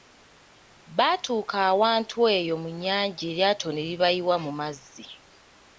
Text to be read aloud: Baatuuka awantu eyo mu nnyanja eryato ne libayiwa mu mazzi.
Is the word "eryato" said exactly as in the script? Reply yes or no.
yes